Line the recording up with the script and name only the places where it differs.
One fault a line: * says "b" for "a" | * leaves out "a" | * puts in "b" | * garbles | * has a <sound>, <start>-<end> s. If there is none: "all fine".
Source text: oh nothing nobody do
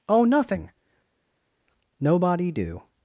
all fine